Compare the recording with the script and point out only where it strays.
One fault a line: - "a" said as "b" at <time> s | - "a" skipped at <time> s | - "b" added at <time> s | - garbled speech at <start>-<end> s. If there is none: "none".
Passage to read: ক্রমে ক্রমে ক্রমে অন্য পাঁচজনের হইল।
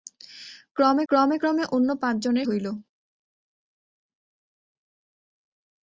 none